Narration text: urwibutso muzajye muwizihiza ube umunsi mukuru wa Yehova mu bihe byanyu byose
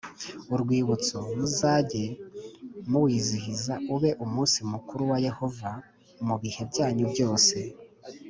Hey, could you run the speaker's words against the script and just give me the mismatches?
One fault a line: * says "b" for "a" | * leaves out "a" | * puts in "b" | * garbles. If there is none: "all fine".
all fine